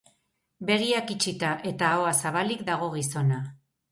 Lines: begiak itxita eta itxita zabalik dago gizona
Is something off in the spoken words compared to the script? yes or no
yes